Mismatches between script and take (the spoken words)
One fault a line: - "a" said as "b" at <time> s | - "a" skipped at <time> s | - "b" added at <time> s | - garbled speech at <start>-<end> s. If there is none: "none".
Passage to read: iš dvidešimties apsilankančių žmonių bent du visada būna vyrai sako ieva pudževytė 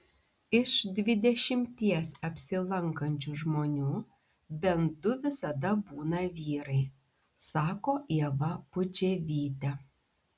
none